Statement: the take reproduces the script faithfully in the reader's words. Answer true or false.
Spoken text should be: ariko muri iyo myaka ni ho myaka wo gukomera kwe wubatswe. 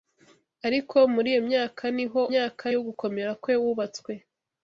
true